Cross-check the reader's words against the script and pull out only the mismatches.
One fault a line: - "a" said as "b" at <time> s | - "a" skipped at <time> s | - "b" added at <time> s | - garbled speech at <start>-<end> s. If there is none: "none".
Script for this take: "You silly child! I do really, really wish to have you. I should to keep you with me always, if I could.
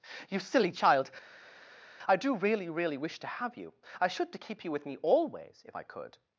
none